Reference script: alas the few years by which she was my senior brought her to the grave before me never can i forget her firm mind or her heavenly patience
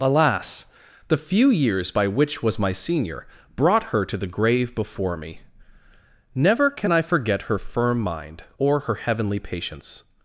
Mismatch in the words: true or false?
true